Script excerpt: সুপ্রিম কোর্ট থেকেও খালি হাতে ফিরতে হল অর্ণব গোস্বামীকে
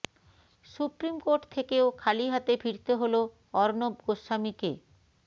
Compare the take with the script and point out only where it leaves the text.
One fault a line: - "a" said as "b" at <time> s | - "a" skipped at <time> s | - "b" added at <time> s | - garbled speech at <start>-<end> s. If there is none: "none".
none